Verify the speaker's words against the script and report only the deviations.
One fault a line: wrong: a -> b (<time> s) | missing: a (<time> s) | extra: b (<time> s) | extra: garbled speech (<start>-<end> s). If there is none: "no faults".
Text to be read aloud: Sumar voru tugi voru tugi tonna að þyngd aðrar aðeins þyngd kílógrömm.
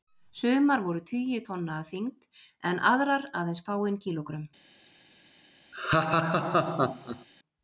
missing: voru tugi (1.4 s)
extra: en (2.7 s)
wrong: þyngd -> fáein (3.7 s)